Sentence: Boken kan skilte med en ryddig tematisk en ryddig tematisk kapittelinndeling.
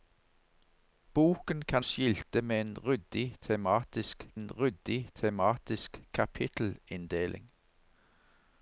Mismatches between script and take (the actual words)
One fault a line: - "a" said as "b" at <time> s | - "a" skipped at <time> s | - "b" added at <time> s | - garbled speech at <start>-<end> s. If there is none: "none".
none